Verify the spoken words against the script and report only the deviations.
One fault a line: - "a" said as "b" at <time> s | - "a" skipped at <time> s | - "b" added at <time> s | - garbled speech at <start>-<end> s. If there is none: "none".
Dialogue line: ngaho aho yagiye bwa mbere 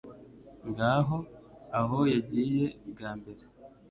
none